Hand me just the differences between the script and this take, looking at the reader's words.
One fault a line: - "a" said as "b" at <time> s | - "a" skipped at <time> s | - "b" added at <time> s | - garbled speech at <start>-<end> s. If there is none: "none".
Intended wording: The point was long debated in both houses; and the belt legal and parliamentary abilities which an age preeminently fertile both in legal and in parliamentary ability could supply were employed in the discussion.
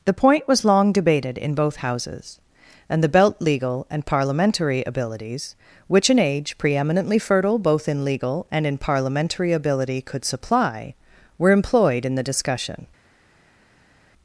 none